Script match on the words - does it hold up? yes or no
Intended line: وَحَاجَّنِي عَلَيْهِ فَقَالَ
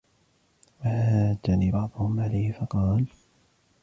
no